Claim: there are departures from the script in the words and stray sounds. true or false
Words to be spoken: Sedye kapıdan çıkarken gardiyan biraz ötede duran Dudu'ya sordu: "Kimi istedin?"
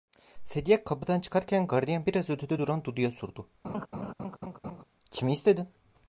true